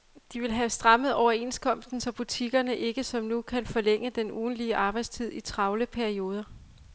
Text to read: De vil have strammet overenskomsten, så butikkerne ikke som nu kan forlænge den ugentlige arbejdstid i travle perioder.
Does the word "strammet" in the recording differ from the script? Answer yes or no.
no